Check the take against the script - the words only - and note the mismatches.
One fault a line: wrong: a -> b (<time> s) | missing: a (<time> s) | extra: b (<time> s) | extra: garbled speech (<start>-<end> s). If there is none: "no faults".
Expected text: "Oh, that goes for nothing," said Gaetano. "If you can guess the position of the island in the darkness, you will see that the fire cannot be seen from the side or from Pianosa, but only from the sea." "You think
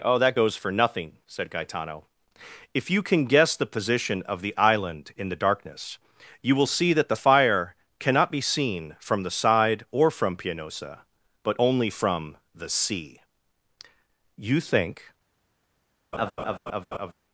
no faults